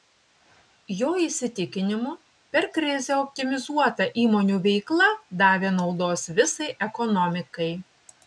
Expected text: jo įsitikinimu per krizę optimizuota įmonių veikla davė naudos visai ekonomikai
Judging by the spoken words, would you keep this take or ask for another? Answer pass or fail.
pass